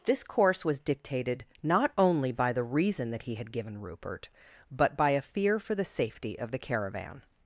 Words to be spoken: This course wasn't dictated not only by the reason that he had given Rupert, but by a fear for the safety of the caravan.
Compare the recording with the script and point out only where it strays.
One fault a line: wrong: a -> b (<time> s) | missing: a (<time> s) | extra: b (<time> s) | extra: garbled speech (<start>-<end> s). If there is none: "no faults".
wrong: wasn't -> was (0.7 s)